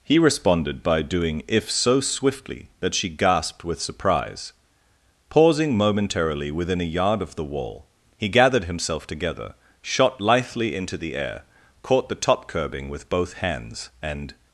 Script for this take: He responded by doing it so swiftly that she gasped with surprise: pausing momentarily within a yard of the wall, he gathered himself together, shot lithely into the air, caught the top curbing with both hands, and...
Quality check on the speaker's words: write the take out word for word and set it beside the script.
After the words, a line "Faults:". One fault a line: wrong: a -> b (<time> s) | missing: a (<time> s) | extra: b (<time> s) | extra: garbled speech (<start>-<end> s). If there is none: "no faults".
He responded by doing if so swiftly that she gasped with surprise: pausing momentarily within a yard of the wall, he gathered himself together, shot lithely into the air, caught the top curbing with both hands, and...
Faults:
wrong: it -> if (1.5 s)